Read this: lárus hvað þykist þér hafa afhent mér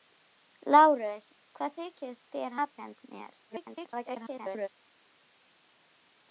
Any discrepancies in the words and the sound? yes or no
yes